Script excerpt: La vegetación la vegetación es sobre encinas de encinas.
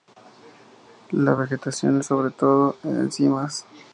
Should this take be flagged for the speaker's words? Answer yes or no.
yes